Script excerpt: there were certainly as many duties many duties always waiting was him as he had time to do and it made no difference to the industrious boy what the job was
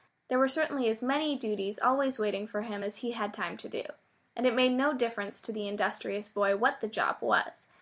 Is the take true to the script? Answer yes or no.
no